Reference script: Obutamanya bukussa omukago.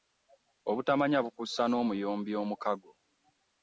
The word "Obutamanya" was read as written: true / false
true